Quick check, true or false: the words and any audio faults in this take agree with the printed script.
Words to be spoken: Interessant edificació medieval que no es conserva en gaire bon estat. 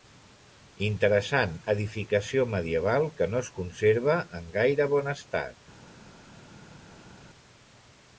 true